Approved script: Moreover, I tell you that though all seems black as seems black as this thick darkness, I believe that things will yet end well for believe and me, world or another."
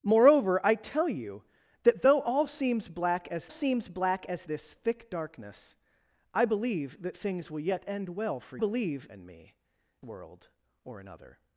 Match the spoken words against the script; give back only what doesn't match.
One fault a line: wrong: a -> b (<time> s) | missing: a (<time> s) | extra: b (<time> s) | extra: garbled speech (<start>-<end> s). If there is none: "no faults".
no faults